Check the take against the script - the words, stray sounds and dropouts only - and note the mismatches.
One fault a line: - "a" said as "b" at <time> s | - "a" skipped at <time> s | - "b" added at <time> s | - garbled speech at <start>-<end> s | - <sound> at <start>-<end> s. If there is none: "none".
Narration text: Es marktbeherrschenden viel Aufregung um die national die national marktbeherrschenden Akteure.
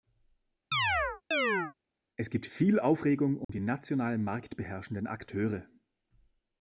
- chirp at 0.7-1.7 s
- "marktbeherrschenden" said as "gibt" at 2.3 s
- dropout at 3.4-3.5 s
- "die national" skipped at 4.2 s